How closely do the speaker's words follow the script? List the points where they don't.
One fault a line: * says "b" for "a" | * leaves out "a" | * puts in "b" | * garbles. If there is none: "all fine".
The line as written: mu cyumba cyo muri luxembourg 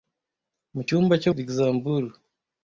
* leaves out "muri"